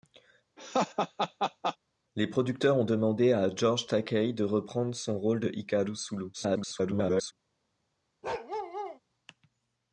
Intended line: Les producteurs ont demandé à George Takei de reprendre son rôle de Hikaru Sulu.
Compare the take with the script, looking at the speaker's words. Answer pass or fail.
fail